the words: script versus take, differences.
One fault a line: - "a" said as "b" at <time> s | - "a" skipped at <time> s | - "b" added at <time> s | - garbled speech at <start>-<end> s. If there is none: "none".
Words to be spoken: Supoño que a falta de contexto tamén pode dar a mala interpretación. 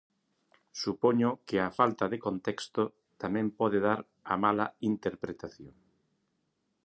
none